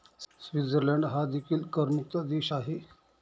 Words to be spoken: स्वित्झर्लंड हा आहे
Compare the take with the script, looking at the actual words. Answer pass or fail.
fail